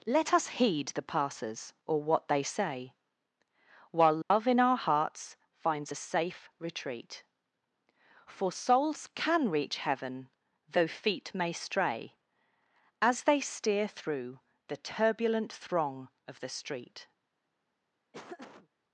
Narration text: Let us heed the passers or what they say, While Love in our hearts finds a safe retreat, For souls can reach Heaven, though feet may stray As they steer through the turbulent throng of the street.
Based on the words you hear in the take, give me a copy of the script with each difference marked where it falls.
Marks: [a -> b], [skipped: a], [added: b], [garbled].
Let us heed the passers or what they say, While Love in our hearts finds a safe retreat, For souls can reach Heaven, though feet may stray As they steer through the turbulent throng of the street.